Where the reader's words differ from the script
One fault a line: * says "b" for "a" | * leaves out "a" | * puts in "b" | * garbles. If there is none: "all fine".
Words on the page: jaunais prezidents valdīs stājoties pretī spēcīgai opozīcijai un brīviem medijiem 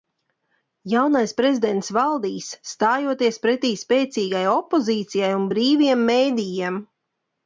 all fine